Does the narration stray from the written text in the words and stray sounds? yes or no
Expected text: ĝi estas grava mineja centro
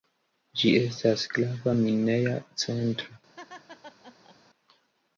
yes